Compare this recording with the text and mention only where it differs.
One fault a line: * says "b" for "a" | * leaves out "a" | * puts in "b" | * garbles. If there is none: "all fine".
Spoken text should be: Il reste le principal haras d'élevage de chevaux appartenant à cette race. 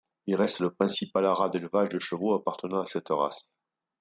all fine